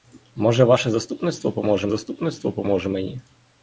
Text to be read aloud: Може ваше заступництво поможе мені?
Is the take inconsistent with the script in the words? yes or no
yes